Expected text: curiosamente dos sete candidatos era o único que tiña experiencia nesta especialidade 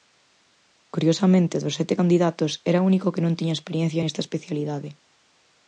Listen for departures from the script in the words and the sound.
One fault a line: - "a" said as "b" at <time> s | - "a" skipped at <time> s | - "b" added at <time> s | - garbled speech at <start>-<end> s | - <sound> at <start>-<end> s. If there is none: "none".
- "non" added at 3.2 s